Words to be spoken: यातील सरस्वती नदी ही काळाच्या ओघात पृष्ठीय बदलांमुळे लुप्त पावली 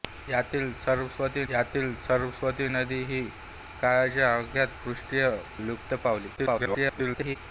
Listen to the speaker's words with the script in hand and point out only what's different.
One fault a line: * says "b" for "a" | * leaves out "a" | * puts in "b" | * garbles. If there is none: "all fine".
* puts in "यातील सरस्वती"
* leaves out "बदलांमुळे"
* garbles